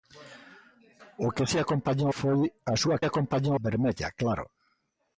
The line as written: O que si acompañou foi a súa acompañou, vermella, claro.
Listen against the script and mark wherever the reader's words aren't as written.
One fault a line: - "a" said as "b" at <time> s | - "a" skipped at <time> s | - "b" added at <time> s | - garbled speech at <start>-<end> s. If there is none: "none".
none